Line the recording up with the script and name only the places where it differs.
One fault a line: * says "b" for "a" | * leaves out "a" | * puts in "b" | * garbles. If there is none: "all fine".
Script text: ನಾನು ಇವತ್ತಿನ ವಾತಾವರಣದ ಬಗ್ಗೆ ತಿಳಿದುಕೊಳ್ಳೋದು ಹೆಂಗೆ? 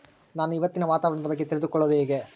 all fine